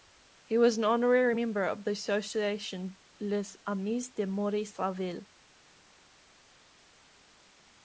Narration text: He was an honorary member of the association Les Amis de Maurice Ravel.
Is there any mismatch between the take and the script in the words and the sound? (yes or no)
no